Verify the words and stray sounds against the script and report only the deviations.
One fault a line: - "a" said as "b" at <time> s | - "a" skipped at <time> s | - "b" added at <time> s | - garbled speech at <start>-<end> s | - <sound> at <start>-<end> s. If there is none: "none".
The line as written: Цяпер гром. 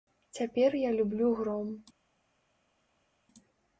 - "я люблю" added at 0.8 s